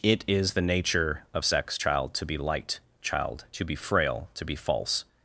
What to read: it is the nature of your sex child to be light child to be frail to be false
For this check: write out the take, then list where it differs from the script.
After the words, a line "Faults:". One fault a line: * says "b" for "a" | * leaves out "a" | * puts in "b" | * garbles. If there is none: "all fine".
it is the nature of sex child to be light child to be frail to be false
Faults:
* leaves out "your"